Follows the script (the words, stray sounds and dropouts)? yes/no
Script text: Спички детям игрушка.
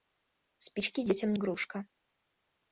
yes